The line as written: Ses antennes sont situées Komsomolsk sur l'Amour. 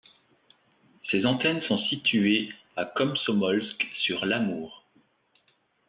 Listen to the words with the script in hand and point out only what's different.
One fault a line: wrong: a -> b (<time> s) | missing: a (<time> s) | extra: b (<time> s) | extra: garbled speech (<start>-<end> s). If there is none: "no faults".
extra: à (2.8 s)